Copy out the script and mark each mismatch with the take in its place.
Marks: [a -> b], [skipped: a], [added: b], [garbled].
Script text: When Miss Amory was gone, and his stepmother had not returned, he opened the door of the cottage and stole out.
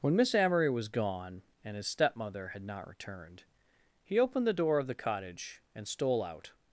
When Miss Amory was gone, and his stepmother had not returned, he opened the door of the cottage and stole out.